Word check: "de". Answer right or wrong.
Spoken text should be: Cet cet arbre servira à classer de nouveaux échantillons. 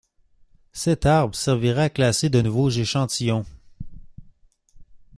right